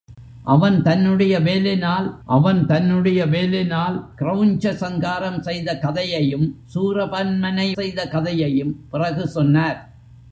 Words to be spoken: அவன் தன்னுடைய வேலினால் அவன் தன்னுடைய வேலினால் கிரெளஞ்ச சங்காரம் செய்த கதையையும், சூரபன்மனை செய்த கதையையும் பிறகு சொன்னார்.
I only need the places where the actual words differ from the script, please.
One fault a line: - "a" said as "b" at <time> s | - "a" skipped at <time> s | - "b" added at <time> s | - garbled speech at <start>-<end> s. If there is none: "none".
none